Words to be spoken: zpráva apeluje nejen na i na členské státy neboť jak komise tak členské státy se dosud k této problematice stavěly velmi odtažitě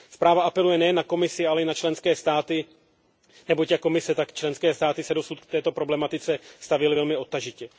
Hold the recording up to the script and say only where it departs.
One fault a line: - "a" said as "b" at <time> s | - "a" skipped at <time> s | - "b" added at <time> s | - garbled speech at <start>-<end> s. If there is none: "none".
- "komisi ale" added at 1.0 s